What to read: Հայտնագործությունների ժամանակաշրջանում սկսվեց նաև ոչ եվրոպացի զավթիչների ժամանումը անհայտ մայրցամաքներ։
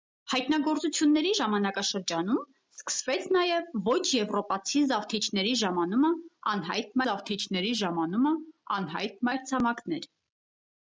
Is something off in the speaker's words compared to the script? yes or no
yes